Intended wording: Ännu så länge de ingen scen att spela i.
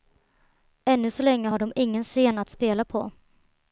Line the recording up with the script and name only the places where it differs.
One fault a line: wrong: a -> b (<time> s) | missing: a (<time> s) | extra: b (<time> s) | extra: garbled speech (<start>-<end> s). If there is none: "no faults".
extra: har (1.5 s)
wrong: i -> på (2.8 s)